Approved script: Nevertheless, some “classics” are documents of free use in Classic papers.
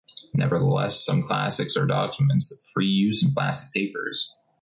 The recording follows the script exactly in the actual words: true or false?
true